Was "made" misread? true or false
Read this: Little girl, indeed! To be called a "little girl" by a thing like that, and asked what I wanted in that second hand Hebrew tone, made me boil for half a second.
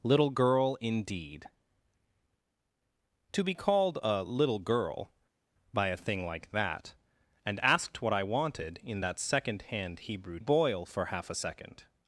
true